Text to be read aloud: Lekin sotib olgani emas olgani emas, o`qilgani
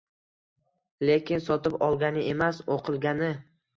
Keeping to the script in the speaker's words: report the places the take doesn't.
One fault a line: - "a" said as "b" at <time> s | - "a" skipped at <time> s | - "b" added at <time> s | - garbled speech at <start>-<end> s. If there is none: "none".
- "olgani emas" skipped at 2.6 s